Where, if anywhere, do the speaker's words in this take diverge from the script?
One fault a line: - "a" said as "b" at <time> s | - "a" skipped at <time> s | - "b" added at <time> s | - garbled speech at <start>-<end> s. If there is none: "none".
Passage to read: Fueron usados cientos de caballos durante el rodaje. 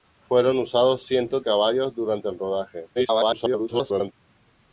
- "de" skipped at 1.4 s
- garbled speech at 3.0-4.1 s